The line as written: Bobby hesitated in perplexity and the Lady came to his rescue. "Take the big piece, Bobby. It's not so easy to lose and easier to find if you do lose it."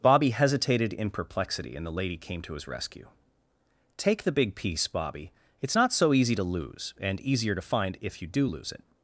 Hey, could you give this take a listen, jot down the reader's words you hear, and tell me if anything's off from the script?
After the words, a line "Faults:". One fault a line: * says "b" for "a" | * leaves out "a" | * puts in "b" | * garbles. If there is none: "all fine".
Bobby hesitated in perplexity and the Lady came to his rescue. "Take the big piece, Bobby. It's not so easy to lose and easier to find if you do lose it."
Faults:
all fine